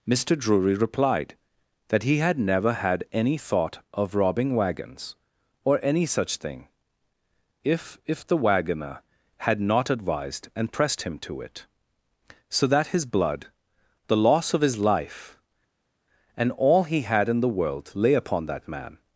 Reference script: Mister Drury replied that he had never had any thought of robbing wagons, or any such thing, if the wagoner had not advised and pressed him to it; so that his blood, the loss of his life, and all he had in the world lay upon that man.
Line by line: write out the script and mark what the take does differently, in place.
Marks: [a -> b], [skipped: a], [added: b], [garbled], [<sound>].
Mister Drury replied that he had never had any thought of robbing wagons, or any such thing, if [added: if] the wagoner had not advised and pressed him to it; so that his blood, the loss of his life, and all he had in the world lay upon that man.